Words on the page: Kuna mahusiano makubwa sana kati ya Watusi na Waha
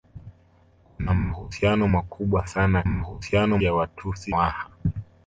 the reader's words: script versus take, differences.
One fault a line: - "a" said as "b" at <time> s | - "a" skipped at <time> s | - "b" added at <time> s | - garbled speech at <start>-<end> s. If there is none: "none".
- "kati" said as "mahusiano" at 2.8 s
- "na" skipped at 4.3 s